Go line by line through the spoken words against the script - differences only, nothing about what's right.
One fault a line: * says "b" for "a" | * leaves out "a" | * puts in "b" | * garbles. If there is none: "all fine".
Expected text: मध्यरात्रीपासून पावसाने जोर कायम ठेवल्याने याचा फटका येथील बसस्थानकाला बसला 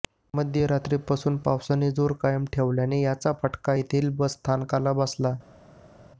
all fine